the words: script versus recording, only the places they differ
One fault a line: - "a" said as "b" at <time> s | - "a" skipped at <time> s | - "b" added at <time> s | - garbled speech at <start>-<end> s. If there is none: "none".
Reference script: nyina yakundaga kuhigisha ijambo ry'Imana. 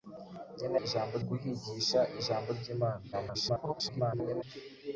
- "yakundaga" said as "ijambo" at 0.8 s
- garbled speech at 3.1-4.4 s